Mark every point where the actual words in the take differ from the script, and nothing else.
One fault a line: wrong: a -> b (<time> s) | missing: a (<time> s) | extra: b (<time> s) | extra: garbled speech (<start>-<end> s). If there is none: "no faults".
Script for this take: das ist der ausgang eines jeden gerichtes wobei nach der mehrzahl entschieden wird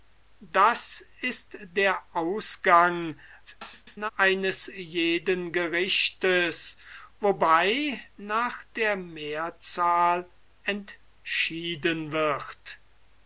extra: garbled speech (3.5-4.1 s)